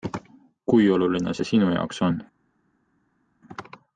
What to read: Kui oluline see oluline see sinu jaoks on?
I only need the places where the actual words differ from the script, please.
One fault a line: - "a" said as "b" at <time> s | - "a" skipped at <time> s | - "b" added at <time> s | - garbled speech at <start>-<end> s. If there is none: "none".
- "oluline see" skipped at 1.5 s